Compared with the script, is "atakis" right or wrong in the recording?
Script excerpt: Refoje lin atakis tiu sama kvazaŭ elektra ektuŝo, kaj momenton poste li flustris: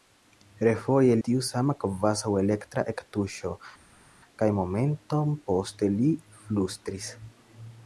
wrong